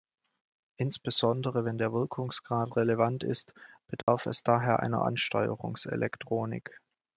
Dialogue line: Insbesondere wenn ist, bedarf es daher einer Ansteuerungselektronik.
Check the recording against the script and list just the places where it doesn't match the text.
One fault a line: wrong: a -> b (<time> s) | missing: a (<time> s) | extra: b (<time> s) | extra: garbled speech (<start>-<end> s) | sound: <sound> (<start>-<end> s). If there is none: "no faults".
extra: der Wirkungsgrad relevant (1.8 s)
sound: dropout (4.0-4.1 s)